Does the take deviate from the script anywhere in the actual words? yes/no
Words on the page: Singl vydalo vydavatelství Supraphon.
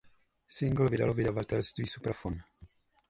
no